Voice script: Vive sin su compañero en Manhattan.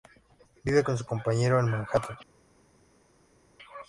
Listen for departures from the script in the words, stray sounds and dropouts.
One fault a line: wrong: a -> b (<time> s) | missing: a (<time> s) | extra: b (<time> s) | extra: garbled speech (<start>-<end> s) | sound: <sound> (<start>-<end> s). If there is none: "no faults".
wrong: sin -> con (0.8 s)